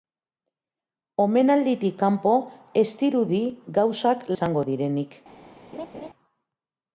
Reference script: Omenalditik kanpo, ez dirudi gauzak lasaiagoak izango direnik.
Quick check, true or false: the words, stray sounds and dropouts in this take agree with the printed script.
false